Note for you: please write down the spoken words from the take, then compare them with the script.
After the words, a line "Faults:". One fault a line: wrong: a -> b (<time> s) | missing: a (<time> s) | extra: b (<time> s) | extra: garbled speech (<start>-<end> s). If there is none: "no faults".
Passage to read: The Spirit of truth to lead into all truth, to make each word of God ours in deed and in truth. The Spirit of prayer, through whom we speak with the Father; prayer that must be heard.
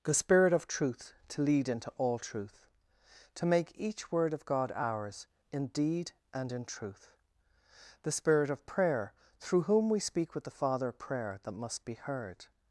The Spirit of truth to lead into all truth, to make each word of God ours in deed and in truth. The Spirit of prayer, through whom we speak with the Father; prayer that must be heard.
Faults:
no faults